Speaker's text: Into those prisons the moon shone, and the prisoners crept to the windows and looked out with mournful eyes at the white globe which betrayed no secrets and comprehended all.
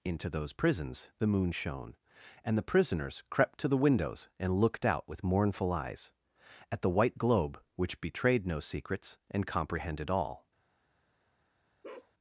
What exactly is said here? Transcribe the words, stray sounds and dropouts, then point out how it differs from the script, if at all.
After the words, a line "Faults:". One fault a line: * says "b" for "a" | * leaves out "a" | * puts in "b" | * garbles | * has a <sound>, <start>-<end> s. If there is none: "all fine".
Into those prisons the moon shone, and the prisoners crept to the windows and looked out with mournful eyes at the white globe which betrayed no secrets and comprehended all.
Faults:
* has a bark, 11.8-12.1 s